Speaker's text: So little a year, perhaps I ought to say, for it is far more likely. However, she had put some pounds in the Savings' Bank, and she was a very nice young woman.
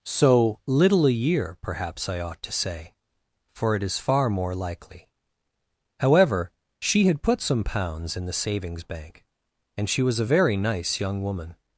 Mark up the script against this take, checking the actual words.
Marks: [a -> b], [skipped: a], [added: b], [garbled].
So little a year, perhaps I ought to say, for it is far more likely. However, she had put some pounds in the Savings' Bank, and she was a very nice young woman.